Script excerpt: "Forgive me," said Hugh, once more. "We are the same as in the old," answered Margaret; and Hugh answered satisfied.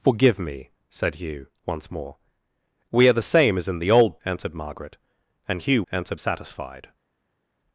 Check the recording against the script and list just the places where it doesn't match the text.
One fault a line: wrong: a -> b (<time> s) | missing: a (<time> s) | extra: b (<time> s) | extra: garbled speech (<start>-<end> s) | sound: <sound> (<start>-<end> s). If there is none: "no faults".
no faults